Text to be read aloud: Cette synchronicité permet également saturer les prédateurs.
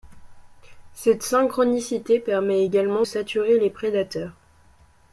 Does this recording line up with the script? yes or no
yes